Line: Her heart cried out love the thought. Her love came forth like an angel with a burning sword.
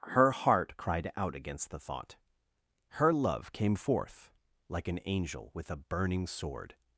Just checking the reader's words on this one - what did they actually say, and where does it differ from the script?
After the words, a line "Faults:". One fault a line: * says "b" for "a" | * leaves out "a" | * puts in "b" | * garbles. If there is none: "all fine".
Her heart cried out against the thought. Her love came forth like an angel with a burning sword.
Faults:
* says "against" for "love"